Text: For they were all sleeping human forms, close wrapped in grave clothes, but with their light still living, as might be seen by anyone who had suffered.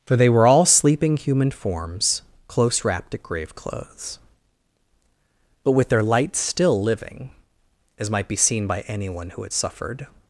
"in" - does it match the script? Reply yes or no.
no